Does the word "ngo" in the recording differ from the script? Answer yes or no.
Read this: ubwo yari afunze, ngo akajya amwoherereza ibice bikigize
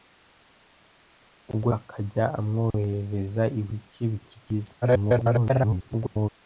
yes